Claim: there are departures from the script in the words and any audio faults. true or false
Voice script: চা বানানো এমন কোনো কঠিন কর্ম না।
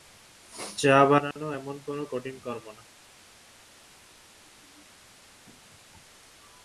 true